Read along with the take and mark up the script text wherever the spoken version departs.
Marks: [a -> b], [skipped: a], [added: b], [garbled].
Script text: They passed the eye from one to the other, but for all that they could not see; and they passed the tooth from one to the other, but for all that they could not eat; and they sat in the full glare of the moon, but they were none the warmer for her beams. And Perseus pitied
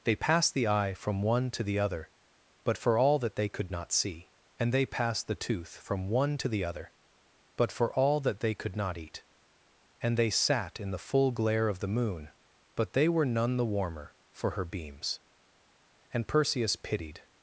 They passed the eye from one to the other, but for all that they could not see; and they passed the tooth from one to the other, but for all that they could not eat; and they sat in the full glare of the moon, but they were none the warmer for her beams. And Perseus pitied